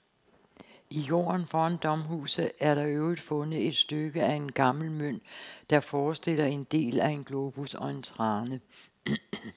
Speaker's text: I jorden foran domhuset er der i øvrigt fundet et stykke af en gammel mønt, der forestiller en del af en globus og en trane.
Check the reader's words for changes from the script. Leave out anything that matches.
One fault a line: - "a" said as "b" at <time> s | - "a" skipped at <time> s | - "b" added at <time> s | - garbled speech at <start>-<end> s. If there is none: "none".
none